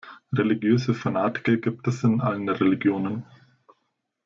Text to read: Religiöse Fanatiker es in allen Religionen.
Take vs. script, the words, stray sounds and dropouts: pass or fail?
fail